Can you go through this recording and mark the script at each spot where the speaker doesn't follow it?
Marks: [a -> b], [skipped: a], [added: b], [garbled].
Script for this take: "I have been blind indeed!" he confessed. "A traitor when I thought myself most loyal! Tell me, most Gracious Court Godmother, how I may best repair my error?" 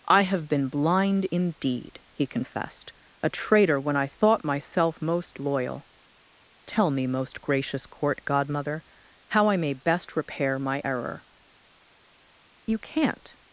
"I have been blind indeed!" he confessed. "A traitor when I thought myself most loyal! Tell me, most Gracious Court Godmother, how I may best repair my error?" [added: You can't]